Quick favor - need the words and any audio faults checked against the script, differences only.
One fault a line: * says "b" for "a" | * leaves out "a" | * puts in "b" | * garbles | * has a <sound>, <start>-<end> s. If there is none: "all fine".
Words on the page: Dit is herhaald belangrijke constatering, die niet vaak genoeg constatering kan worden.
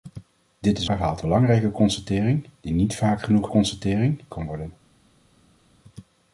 all fine